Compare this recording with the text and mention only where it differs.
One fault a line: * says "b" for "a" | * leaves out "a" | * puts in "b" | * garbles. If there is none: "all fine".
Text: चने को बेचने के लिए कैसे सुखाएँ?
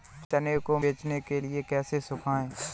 all fine